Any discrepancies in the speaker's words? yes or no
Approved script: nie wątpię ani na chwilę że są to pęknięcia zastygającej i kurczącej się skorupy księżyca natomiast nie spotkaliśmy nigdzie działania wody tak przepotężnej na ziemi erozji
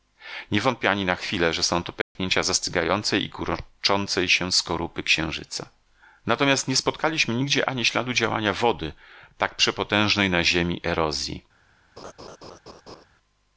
yes